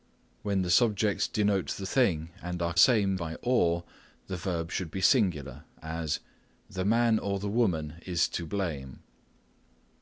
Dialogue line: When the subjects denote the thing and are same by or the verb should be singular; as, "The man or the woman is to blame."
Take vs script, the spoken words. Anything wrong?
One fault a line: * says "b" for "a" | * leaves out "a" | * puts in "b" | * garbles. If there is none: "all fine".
all fine